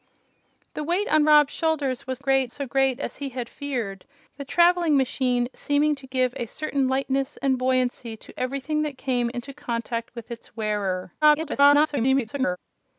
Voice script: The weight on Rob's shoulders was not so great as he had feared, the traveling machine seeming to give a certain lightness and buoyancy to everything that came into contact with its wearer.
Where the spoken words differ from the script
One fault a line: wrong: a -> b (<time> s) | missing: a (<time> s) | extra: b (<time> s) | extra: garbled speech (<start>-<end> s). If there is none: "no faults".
wrong: not -> great (2.2 s)
extra: garbled speech (11.2-12.6 s)